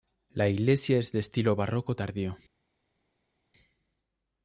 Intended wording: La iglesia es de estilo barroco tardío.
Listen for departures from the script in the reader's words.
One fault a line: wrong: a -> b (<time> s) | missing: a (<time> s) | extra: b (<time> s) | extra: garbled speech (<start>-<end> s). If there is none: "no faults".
no faults